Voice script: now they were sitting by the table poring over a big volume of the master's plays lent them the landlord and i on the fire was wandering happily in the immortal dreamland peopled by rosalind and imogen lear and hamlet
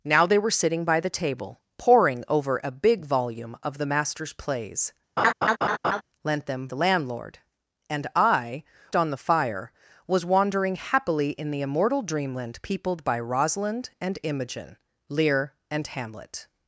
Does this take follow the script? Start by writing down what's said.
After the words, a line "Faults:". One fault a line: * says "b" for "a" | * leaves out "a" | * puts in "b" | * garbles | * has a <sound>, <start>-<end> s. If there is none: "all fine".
now they were sitting by the table poring over a big volume of the master's plays lent them the landlord and i on the fire was wandering happily in the immortal dreamland peopled by rosalind and imogen lear and hamlet
Faults:
* has a laugh, 5.2-6.0 s